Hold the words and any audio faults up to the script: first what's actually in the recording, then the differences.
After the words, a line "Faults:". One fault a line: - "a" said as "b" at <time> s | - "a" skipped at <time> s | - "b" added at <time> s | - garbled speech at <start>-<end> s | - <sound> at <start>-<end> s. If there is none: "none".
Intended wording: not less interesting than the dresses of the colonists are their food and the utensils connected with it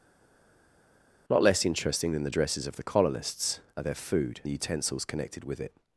not less interesting than the dresses of the colonists are their food the utensils connected with it
Faults:
- "and" skipped at 4.4 s